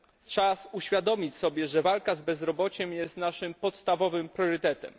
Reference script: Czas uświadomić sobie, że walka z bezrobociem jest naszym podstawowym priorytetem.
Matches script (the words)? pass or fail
pass